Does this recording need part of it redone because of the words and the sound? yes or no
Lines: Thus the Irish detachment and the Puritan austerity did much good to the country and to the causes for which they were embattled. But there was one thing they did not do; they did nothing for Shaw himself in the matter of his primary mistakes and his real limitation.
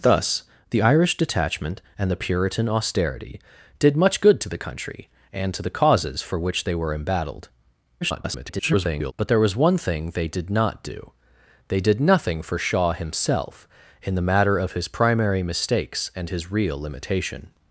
yes